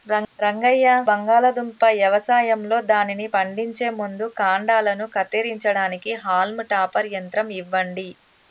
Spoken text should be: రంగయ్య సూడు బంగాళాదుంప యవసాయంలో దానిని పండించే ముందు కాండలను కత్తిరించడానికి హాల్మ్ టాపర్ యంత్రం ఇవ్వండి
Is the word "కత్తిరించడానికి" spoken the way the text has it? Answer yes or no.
yes